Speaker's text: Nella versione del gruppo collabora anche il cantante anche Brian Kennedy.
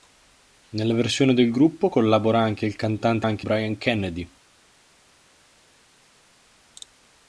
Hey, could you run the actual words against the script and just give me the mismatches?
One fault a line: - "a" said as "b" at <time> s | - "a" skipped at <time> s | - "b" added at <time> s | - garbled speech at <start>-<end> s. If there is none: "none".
none